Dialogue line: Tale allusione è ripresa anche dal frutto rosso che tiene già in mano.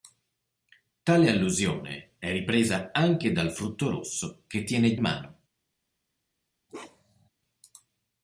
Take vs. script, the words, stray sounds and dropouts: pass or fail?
fail